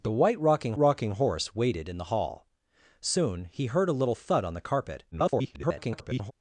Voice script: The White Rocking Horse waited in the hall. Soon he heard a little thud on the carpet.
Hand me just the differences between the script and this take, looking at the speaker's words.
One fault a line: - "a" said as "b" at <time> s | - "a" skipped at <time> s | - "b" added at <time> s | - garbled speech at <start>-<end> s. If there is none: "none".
- "Rocking" added at 0.7 s
- garbled speech at 5.1-6.3 s